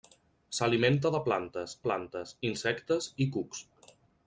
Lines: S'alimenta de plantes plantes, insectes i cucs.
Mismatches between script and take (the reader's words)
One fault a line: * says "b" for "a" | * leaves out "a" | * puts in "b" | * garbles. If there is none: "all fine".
all fine